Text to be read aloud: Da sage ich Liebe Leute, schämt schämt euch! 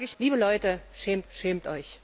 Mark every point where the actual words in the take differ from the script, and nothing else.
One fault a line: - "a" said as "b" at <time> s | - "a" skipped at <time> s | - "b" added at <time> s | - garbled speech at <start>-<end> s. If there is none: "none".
none